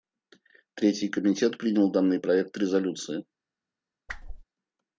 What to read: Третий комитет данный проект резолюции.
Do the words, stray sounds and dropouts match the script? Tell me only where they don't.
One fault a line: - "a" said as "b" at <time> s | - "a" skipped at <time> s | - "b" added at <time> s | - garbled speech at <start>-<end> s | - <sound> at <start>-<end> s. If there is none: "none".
- "принял" added at 1.6 s
- whoosh at 4.1-4.4 s